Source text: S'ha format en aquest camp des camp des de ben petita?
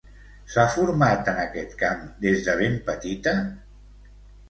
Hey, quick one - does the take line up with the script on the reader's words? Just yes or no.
no